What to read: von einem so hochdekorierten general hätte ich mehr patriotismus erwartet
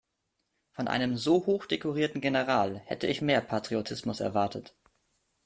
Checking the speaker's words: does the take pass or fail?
pass